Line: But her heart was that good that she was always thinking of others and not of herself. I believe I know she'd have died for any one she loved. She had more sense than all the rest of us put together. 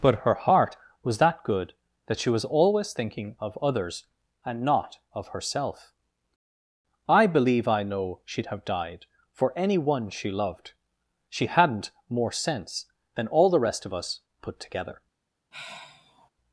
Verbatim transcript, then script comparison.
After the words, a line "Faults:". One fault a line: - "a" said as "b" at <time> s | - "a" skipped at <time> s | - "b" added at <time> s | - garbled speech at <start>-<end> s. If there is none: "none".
But her heart was that good that she was always thinking of others and not of herself. I believe I know she'd have died for any one she loved. She hadn't more sense than all the rest of us put together.
Faults:
- "had" said as "hadn't" at 11.5 s